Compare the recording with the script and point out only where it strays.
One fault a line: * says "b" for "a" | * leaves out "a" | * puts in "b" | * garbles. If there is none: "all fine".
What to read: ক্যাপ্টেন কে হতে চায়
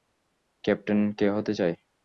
all fine